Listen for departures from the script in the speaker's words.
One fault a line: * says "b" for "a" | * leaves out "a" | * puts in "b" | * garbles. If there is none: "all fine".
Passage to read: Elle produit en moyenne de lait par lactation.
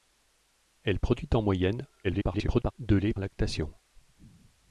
* garbles
* leaves out "par"